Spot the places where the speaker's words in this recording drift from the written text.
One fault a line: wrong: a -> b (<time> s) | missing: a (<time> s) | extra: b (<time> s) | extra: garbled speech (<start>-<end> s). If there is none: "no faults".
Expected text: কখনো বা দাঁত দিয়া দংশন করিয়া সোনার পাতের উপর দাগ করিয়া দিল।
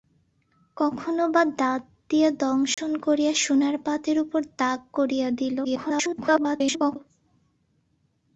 extra: garbled speech (5.6-7.0 s)